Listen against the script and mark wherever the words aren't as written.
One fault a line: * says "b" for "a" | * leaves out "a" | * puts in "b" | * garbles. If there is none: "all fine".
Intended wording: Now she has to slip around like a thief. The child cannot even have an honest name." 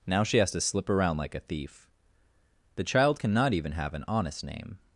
all fine